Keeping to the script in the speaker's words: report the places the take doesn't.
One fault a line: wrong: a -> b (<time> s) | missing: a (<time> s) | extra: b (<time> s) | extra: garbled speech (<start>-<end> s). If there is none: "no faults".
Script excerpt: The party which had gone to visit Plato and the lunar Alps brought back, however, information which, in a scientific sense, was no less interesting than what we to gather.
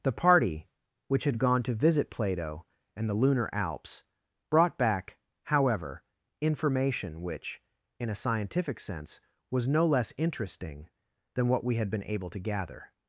extra: had been able (11.8 s)